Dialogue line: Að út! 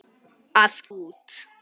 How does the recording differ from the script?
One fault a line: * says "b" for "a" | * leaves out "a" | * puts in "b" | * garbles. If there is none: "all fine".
all fine